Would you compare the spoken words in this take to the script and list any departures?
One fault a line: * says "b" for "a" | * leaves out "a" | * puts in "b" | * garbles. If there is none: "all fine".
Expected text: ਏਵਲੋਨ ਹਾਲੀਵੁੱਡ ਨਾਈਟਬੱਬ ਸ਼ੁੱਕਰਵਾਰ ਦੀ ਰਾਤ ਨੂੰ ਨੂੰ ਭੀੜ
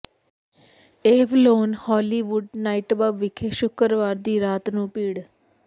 * puts in "ਵਿਖੇ"
* leaves out "ਨੂੰ"